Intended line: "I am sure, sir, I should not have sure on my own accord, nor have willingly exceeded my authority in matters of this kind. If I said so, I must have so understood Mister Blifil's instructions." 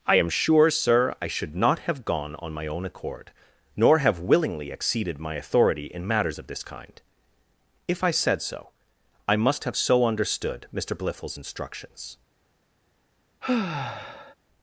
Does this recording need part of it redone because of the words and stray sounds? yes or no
yes